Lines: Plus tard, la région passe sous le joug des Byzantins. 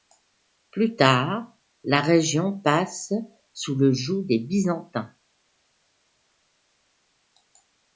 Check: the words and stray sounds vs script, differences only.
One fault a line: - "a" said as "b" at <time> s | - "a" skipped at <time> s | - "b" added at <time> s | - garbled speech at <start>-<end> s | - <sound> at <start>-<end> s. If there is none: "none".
none